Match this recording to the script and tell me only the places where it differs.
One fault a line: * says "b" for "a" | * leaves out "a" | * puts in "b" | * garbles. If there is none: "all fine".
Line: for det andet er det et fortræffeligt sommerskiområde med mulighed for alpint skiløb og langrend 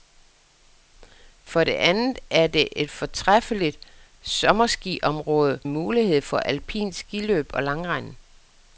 * leaves out "med"